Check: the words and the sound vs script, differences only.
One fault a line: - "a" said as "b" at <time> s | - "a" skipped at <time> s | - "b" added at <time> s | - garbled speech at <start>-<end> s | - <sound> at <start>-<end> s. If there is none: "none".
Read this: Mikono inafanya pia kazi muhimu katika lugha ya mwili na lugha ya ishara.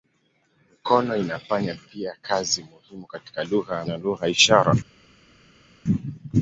- "mwili" skipped at 3.9 s